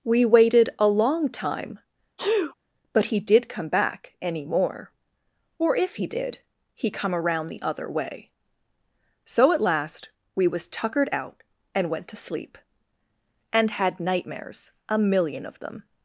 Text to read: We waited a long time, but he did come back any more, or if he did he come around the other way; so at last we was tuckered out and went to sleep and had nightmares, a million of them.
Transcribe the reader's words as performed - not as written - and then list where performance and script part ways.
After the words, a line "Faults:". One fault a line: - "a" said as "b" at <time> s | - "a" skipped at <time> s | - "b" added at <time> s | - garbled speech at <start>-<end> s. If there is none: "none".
We waited a long time, but he did come back any more, or if he did he come around the other way; so at last we was tuckered out and went to sleep and had nightmares, a million of them.
Faults:
none